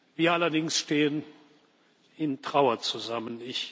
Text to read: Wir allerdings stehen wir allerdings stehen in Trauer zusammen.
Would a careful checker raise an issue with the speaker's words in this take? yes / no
yes